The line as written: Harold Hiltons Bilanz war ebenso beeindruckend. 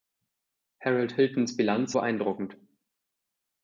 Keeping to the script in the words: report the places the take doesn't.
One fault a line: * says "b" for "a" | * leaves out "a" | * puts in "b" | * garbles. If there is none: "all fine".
* leaves out "war ebenso"